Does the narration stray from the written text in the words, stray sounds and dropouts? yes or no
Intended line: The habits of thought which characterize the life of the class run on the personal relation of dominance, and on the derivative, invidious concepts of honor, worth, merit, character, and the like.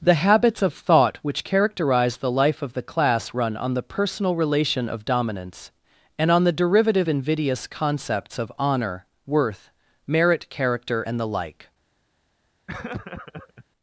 yes